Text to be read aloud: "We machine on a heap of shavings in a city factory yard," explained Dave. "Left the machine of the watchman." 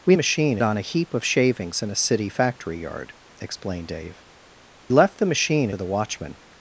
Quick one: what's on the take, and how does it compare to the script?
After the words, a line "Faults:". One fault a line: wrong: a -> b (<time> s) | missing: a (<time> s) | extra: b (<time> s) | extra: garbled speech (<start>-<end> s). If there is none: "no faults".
"We machine on a heap of shavings in a city factory yard," explained Dave. "Left the machine of the watchman."
Faults:
no faults